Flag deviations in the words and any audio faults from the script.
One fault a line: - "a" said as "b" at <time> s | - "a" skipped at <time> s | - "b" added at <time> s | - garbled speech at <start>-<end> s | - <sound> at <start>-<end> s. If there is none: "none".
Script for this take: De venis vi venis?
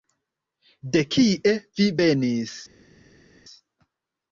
- "venis" said as "kie" at 1.2 s